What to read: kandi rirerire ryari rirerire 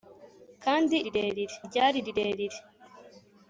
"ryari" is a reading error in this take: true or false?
false